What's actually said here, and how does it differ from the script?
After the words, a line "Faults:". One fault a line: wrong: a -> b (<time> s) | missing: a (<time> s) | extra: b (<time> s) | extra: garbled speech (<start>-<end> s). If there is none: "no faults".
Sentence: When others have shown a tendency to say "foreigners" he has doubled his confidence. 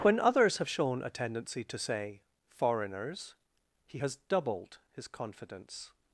When others have shown a tendency to say "foreigners" he has doubled his confidence.
Faults:
no faults